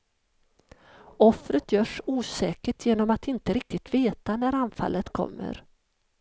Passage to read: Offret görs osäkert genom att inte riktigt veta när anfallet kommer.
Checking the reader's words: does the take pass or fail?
pass